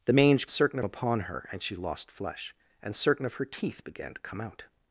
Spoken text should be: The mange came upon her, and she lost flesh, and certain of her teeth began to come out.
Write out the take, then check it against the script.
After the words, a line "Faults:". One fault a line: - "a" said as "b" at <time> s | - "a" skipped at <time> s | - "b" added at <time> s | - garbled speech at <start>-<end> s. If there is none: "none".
The mange certain upon her, and she lost flesh, and certain of her teeth began to come out.
Faults:
- "came" said as "certain" at 0.5 s